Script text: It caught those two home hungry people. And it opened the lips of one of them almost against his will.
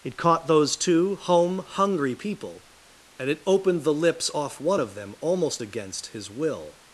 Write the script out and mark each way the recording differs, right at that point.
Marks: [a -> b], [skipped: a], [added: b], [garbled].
It caught those two home hungry people. And it opened the lips [of -> off] one of them almost against his will.